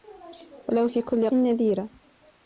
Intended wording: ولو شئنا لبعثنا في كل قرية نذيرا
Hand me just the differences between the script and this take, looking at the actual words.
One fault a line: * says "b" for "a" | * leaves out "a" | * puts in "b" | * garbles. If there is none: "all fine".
* leaves out "شئنا لبعثنا"
* leaves out "قرية"